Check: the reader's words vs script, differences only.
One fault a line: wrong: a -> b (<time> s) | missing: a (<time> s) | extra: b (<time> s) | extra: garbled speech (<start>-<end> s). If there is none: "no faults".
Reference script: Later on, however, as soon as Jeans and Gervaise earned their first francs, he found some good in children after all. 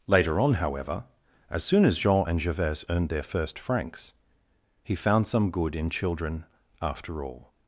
wrong: Jeans -> Jean (2.0 s)